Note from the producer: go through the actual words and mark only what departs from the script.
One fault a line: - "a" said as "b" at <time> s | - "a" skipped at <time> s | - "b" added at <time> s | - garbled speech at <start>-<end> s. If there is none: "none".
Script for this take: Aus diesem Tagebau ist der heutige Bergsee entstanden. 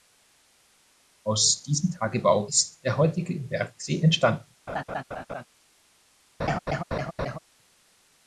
none